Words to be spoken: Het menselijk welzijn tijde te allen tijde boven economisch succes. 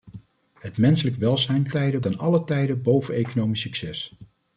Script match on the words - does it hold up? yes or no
yes